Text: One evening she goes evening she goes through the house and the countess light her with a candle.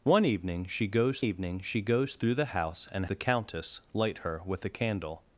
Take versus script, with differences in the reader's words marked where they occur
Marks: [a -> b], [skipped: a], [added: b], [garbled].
One evening she goes evening she goes through the house and the countess light her with a candle.